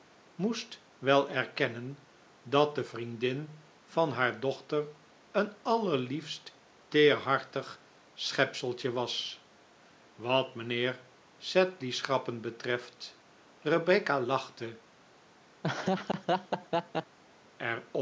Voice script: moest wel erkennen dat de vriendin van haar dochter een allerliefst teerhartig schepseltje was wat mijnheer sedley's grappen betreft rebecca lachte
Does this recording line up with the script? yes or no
yes